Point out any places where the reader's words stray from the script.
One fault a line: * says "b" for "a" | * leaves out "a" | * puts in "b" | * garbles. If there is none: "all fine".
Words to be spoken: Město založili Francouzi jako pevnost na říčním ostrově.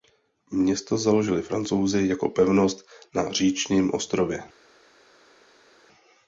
all fine